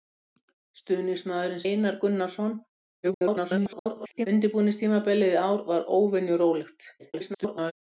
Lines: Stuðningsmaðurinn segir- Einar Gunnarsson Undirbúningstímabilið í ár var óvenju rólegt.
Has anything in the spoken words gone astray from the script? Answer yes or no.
yes